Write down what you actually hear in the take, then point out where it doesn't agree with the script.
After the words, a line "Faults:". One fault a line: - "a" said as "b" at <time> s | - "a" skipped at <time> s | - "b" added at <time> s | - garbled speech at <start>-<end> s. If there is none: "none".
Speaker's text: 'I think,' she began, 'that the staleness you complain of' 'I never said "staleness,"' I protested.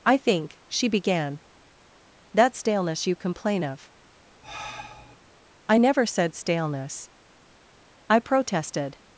'I think,' she began, 'that staleness you complain of' 'I never said "staleness,"' I protested.
Faults:
- "the" skipped at 2.5 s